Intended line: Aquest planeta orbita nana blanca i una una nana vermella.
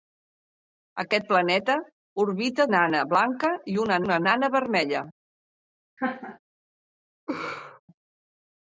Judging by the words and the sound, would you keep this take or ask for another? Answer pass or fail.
fail